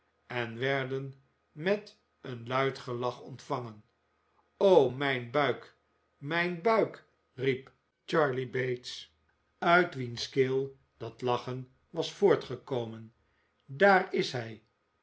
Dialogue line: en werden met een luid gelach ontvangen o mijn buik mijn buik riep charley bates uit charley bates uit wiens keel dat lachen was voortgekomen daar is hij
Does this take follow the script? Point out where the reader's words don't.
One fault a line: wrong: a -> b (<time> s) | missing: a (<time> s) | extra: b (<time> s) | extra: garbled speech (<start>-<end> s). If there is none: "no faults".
missing: charley bates uit (9.9 s)